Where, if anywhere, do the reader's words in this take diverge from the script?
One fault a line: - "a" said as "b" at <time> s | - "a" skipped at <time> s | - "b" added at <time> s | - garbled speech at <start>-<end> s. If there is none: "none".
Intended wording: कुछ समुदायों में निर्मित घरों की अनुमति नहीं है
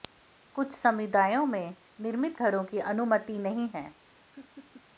none